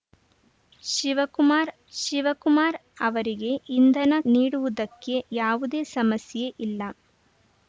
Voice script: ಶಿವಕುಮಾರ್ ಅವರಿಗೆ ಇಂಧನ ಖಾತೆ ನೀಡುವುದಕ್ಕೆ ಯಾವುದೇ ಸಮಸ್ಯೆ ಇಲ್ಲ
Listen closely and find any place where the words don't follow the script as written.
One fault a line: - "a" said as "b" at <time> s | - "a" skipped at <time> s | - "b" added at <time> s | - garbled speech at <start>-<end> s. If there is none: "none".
- "ಶಿವಕುಮಾರ್" added at 1.9 s
- "ಖಾತೆ" skipped at 4.1 s